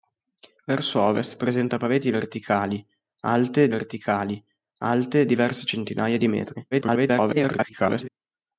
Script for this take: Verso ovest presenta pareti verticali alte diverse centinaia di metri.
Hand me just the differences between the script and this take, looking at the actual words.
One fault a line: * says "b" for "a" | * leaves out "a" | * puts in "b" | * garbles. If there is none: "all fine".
* puts in "verticali alte"
* garbles